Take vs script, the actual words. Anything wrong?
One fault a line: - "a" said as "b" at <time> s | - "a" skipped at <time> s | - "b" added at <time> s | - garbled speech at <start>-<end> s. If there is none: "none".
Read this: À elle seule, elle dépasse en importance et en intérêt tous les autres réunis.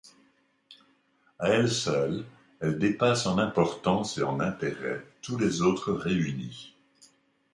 none